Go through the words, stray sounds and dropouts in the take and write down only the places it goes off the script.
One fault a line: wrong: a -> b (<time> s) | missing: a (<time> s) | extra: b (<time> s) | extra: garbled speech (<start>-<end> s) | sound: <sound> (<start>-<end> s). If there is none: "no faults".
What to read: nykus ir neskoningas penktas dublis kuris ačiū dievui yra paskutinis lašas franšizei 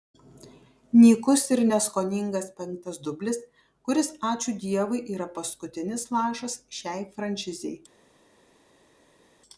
extra: šiai (6.8 s)